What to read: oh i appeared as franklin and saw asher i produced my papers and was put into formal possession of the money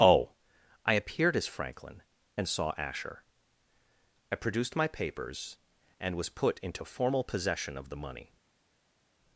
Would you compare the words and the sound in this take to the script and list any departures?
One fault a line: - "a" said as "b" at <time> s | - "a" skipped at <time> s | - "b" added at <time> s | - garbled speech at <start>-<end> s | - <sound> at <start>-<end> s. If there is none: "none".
none